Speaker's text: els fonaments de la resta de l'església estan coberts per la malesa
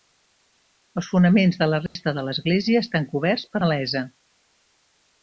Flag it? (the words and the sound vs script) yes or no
yes